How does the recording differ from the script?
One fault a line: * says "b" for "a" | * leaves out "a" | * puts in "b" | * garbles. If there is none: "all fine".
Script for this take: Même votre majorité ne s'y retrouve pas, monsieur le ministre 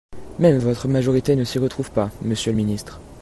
all fine